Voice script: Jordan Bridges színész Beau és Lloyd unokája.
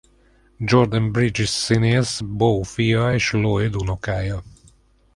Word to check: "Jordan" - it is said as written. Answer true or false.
true